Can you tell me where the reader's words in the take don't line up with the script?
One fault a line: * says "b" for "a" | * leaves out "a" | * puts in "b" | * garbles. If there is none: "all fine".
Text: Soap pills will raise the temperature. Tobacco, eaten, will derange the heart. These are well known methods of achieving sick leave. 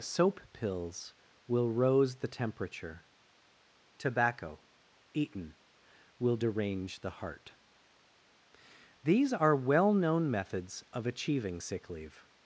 * says "rose" for "raise"